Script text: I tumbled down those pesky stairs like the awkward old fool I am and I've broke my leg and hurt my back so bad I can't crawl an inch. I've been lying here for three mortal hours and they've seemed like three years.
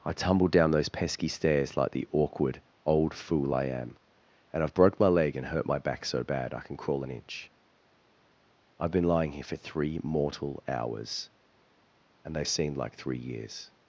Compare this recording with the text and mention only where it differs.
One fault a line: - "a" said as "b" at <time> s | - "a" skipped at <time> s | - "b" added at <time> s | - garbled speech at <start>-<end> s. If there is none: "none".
- "can't" said as "can" at 6.6 s